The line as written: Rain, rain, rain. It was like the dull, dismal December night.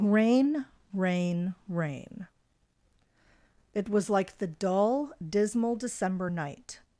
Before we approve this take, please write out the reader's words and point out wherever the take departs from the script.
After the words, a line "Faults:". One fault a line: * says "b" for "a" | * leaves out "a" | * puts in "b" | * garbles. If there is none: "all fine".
Rain, rain, rain. It was like the dull, dismal December night.
Faults:
all fine